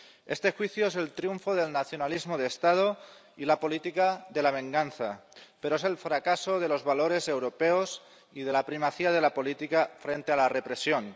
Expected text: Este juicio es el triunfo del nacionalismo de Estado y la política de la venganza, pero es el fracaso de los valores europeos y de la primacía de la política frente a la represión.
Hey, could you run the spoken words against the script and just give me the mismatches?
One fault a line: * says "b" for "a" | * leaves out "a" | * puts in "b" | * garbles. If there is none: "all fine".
all fine